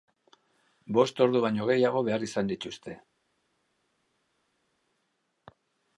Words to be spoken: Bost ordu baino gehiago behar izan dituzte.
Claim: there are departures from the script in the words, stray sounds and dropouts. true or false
false